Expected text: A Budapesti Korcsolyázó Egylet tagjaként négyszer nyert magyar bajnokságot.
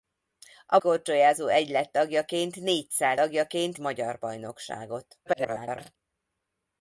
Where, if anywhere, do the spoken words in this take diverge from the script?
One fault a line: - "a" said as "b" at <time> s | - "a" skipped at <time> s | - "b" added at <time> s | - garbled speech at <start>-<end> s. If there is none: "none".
- "Budapesti" skipped at 0.8 s
- "nyert" said as "tagjaként" at 3.1 s
- garbled speech at 5.3-6.0 s